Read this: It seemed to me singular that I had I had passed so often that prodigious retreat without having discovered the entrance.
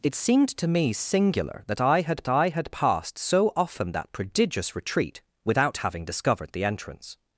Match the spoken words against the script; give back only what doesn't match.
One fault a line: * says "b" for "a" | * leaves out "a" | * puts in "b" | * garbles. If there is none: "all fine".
all fine